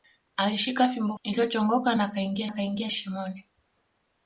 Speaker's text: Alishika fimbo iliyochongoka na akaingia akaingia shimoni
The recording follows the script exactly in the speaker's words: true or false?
true